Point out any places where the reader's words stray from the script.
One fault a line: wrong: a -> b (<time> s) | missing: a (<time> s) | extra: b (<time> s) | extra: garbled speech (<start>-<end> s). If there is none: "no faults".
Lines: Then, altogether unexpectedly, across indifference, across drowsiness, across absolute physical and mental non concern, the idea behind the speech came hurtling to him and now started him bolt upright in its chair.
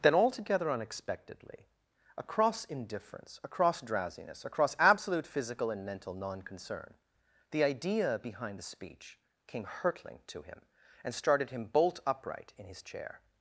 missing: now (11.1 s)
wrong: its -> his (12.7 s)